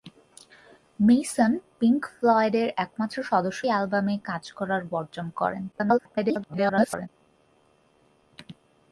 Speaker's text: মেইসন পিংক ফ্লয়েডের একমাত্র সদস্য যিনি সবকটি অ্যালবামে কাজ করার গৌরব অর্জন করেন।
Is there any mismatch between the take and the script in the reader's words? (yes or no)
yes